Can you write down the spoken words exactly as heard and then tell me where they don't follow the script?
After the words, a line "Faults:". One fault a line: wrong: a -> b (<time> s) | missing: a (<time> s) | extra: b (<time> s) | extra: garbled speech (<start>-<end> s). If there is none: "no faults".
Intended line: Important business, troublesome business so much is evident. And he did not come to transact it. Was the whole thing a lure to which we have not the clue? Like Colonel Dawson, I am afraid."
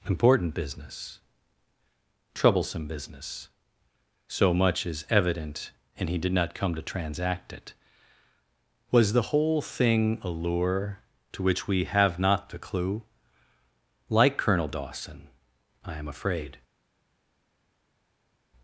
Important business, troublesome business so much is evident. And he did not come to transact it. Was the whole thing a lure to which we have not the clue? Like Colonel Dawson, I am afraid."
Faults:
no faults